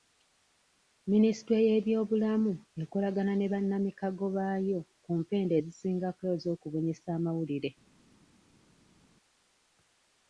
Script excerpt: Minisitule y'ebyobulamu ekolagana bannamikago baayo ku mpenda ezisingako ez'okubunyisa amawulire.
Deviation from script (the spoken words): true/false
true